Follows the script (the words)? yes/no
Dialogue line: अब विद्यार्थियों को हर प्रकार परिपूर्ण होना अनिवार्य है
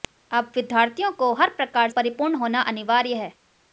yes